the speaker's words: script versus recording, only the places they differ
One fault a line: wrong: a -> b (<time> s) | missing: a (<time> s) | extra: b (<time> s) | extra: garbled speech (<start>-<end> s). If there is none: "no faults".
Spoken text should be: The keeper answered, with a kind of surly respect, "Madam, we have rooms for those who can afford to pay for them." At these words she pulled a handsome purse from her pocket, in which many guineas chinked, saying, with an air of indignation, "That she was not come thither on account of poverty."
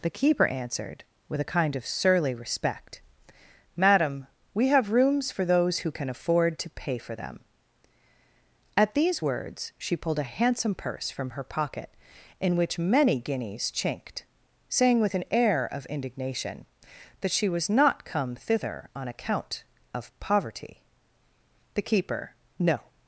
extra: The keeper no (21.7 s)